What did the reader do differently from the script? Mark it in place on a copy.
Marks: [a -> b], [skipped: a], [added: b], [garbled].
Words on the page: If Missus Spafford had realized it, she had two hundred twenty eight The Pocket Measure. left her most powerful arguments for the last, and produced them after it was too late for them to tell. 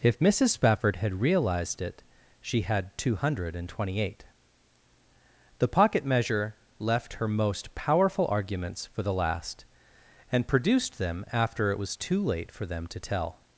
If Missus Spafford had realized it, she had two hundred twenty eight The Pocket Measure. left her most powerful arguments for the last, and produced them after it was too late for them to tell.